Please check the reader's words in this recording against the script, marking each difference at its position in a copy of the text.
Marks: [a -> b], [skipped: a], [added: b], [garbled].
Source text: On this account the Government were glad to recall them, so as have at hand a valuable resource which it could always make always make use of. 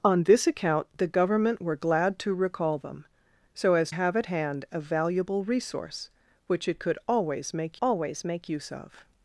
On this account the Government were glad to recall them, so as have at hand a valuable resource which it could always make always make use of.